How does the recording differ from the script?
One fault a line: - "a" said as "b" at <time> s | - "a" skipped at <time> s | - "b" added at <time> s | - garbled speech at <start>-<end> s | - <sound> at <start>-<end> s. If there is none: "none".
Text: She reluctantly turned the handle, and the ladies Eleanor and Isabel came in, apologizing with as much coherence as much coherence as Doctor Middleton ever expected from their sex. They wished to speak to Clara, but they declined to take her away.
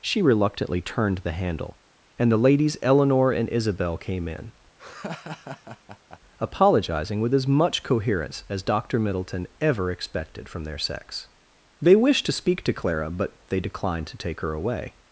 - laugh at 4.8-6.2 s
- "much coherence as" skipped at 8.6 s